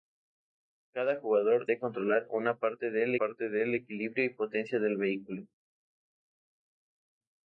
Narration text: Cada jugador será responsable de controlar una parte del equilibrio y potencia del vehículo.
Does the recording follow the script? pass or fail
fail